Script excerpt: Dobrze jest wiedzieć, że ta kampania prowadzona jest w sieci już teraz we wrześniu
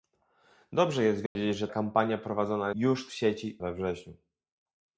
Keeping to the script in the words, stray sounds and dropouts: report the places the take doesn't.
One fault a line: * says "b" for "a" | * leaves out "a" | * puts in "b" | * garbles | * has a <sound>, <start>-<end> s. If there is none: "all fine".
* has a dropout, 1.3-1.4 s
* leaves out "ta"
* says "już" for "jest"
* leaves out "już teraz"